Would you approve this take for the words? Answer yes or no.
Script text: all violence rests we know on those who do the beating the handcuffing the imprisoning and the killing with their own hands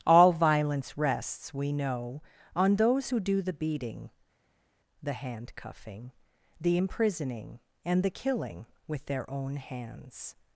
yes